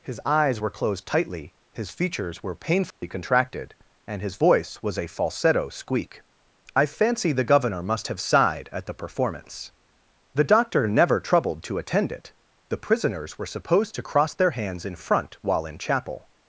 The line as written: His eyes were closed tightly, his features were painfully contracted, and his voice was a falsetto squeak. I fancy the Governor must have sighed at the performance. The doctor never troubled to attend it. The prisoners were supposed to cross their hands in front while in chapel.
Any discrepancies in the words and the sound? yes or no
yes